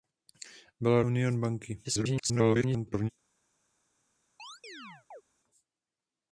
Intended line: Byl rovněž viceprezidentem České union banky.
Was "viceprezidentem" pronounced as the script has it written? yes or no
no